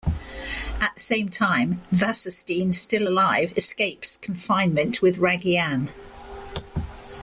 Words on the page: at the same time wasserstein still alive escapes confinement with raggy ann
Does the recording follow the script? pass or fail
pass